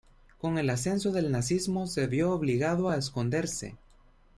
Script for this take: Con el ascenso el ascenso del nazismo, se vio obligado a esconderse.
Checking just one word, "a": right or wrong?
right